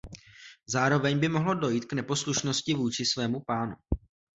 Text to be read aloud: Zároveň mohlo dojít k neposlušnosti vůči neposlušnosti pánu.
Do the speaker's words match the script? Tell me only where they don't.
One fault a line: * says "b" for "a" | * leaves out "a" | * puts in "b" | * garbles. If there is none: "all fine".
* puts in "by"
* says "svému" for "neposlušnosti"